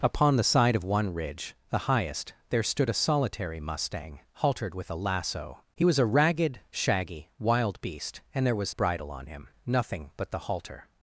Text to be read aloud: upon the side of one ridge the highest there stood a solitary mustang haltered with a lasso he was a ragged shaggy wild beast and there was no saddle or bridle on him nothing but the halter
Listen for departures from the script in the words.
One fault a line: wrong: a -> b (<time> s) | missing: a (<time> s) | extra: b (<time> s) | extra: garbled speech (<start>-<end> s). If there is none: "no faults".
missing: no saddle or (8.7 s)